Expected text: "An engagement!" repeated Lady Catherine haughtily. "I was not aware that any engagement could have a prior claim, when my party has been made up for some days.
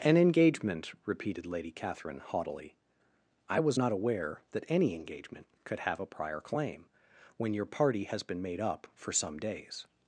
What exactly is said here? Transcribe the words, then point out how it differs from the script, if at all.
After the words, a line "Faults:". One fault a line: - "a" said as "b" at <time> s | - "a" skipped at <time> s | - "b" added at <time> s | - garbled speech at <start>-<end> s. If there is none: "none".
"An engagement!" repeated Lady Catherine haughtily. "I was not aware that any engagement could have a prior claim, when your party has been made up for some days.
Faults:
- "my" said as "your" at 7.5 s